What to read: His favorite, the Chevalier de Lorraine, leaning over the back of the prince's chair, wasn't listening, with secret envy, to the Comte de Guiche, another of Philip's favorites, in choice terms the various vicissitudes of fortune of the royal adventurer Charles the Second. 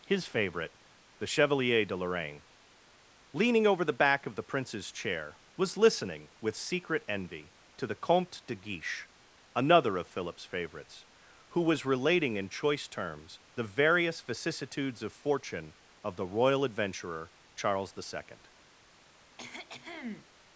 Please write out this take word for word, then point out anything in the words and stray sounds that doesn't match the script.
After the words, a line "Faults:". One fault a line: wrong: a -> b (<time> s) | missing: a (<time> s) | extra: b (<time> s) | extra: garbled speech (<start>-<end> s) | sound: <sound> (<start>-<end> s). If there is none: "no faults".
His favorite, the Chevalier de Lorraine, leaning over the back of the prince's chair, was listening, with secret envy, to the Comte de Guiche, another of Philip's favorites, who was relating in choice terms the various vicissitudes of fortune of the royal adventurer Charles the Second.
Faults:
wrong: wasn't -> was (5.5 s)
extra: who was relating (11.5 s)
sound: cough (19.4-20.3 s)